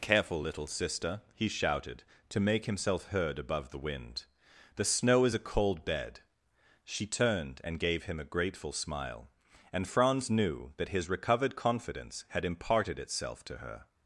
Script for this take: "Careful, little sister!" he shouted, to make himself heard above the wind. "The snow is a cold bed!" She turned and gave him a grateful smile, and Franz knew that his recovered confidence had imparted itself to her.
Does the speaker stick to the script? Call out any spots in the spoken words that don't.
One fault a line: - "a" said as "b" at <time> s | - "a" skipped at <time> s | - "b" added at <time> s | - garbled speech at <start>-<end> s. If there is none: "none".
none